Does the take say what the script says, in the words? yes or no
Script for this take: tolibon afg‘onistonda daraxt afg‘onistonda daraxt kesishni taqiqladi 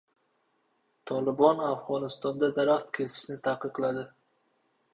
no